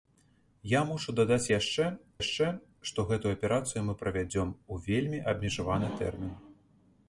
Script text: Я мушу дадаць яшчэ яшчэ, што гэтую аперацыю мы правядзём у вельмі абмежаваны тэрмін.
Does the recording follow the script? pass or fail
pass